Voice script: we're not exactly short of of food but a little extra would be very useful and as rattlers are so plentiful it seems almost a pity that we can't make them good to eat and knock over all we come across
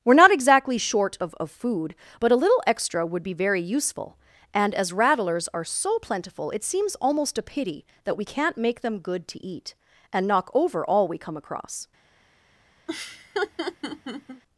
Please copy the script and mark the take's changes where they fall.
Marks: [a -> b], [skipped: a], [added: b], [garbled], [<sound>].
we're not exactly short of of food but a little extra would be very useful and as rattlers are so plentiful it seems almost a pity that we can't make them good to eat and knock over all we come across [laugh]